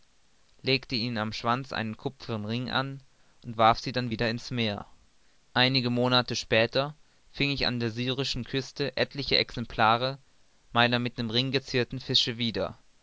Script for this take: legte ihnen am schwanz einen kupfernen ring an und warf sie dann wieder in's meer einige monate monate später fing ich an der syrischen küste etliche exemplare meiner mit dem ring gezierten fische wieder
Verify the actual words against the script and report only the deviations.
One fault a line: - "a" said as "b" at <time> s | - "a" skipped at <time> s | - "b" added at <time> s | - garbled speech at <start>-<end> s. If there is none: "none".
- "monate" skipped at 6.4 s